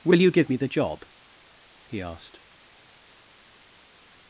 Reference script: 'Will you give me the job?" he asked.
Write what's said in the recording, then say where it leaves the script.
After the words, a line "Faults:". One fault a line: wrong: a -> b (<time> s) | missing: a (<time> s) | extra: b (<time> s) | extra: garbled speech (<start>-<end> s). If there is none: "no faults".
'Will you give me the job?" he asked.
Faults:
no faults